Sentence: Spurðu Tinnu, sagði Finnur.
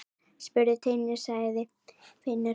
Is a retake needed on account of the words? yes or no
no